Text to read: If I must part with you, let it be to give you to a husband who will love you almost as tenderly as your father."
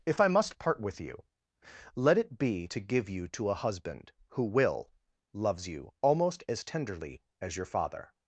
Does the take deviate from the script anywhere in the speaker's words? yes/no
yes